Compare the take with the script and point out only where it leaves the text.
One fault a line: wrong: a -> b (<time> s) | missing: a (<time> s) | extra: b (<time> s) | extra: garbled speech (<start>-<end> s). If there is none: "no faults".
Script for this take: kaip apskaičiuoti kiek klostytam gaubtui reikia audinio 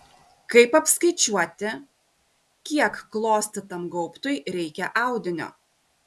no faults